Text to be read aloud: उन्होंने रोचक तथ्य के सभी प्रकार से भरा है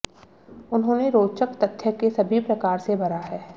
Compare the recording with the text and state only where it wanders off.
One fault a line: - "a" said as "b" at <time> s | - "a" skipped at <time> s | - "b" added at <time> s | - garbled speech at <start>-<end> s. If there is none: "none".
none